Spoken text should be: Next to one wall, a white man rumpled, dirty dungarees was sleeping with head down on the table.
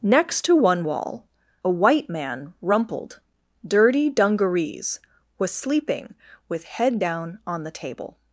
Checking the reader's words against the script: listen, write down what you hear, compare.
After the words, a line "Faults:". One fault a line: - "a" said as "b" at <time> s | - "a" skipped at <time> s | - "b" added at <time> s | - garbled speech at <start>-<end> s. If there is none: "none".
Next to one wall, a white man rumpled, dirty dungarees was sleeping with head down on the table.
Faults:
none